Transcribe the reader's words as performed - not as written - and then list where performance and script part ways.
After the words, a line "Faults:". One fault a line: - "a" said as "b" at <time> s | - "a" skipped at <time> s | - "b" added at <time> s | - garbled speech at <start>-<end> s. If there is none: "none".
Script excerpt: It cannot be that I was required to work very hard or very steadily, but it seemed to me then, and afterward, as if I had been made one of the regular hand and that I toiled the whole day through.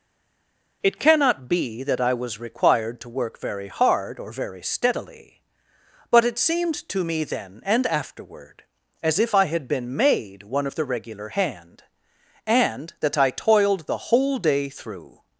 It cannot be that I was required to work very hard or very steadily, but it seemed to me then, and afterward, as if I had been made one of the regular hand and that I toiled the whole day through.
Faults:
none